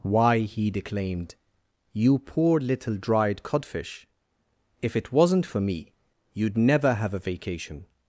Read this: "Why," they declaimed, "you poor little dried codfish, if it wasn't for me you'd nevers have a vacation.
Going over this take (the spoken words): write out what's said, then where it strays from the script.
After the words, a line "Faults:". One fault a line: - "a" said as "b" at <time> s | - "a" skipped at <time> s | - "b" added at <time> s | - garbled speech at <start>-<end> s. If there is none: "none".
"Why," he declaimed, "you poor little dried codfish, if it wasn't for me you'd never have a vacation.
Faults:
- "they" said as "he" at 0.4 s
- "nevers" said as "never" at 6.6 s